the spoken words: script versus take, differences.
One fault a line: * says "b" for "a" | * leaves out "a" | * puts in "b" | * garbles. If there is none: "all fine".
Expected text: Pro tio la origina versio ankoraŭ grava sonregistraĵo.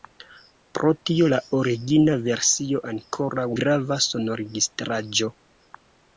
all fine